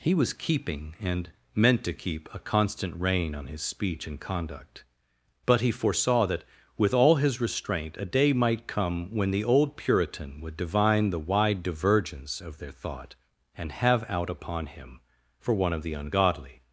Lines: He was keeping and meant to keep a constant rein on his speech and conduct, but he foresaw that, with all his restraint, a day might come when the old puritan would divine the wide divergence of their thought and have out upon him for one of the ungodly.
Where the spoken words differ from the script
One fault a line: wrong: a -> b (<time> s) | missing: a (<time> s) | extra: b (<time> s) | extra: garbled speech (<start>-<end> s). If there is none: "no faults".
no faults